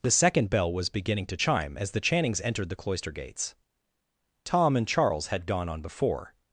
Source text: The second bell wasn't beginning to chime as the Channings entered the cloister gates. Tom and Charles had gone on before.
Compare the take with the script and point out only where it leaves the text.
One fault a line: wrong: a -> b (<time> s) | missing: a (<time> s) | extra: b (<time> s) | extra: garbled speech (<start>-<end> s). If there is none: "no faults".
wrong: wasn't -> was (0.7 s)